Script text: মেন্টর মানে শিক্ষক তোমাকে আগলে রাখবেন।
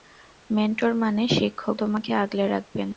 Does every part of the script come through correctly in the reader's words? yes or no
yes